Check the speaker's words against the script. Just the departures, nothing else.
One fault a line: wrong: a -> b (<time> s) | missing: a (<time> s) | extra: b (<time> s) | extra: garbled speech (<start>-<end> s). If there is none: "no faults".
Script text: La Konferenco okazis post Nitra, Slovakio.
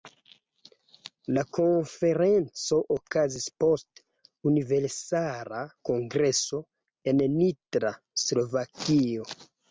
extra: Universala Kongreso en (4.5 s)